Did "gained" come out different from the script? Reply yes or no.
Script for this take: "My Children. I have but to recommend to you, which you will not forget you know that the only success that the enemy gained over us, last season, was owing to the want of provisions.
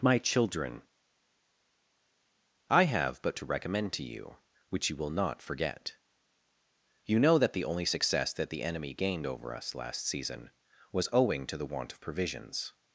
no